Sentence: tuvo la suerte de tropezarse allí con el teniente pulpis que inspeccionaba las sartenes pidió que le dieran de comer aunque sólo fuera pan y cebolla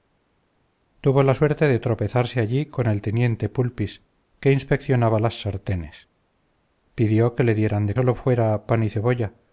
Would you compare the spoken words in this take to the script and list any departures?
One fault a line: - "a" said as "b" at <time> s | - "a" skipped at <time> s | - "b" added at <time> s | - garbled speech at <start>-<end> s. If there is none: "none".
- "comer aunque" skipped at 8.0 s